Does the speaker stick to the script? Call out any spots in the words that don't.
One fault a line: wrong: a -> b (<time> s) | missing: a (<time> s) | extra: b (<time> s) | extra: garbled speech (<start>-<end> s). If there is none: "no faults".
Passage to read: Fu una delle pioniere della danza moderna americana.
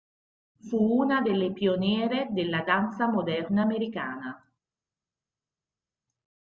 no faults